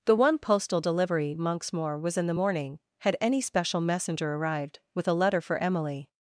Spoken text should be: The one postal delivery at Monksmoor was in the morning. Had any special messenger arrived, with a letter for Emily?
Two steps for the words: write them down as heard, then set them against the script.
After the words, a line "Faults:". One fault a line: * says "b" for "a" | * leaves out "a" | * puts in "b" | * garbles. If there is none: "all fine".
The one postal delivery Monksmoor was in the morning. Had any special messenger arrived, with a letter for Emily?
Faults:
* leaves out "at"